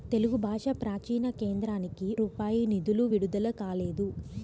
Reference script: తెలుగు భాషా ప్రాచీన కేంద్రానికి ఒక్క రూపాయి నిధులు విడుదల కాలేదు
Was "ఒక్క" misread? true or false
true